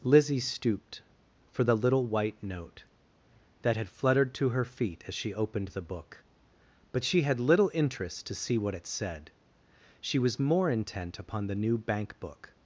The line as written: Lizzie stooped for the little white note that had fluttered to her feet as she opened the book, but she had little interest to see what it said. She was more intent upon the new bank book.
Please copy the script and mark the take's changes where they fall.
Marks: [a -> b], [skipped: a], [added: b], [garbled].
Lizzie stooped for the little white note that had fluttered to her feet as she opened the book, but she had little interest to see what it said. She was more intent upon the new bank book.